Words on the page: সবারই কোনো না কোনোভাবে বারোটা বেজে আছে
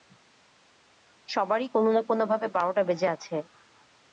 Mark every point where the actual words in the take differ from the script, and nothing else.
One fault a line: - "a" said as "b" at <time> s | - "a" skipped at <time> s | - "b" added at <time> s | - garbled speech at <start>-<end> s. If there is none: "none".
none